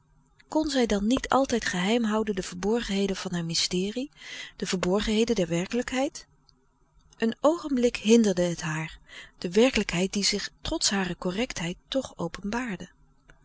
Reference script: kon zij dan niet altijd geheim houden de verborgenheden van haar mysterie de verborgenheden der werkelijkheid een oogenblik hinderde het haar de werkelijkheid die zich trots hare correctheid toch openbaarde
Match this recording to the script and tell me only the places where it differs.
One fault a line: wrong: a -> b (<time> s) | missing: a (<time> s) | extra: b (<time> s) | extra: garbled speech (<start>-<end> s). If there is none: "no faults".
no faults